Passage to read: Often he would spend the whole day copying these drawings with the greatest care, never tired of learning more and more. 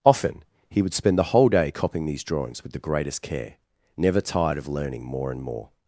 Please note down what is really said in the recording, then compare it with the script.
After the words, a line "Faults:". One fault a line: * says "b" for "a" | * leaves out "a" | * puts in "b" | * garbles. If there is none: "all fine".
Often he would spend the whole day copying these drawings with the greatest care, never tired of learning more and more.
Faults:
all fine